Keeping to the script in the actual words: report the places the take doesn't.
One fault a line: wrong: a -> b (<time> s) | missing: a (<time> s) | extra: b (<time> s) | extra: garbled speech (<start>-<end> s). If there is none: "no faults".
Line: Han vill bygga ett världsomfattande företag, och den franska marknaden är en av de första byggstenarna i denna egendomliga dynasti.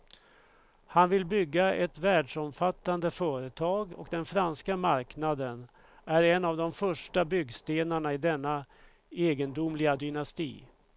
no faults